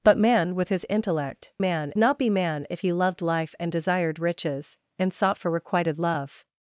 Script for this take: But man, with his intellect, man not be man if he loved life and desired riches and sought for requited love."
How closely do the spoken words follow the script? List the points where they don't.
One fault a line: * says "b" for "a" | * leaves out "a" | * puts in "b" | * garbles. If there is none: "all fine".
all fine